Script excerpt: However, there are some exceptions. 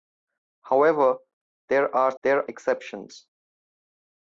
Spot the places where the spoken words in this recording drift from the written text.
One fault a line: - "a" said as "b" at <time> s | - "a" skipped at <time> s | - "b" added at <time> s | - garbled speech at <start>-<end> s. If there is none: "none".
- "some" said as "there" at 2.2 s